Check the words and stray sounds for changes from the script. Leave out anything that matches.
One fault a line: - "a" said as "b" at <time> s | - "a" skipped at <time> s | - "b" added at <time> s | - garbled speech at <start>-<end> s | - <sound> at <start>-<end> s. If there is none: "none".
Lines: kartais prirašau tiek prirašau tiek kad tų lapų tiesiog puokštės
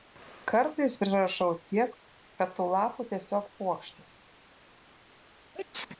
- "prirašau tiek" skipped at 2.0 s
- sneeze at 5.5-6.0 s